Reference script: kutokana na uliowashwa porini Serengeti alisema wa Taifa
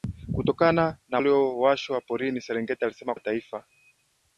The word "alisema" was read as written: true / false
true